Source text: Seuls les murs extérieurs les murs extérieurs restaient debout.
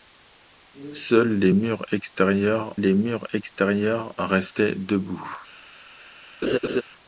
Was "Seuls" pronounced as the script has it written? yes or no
yes